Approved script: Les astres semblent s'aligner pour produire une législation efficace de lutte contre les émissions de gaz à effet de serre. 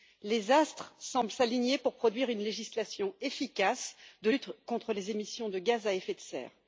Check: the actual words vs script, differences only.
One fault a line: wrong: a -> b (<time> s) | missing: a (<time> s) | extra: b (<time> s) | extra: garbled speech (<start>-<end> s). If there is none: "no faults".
no faults